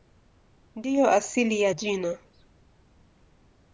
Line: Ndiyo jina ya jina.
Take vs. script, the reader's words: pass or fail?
fail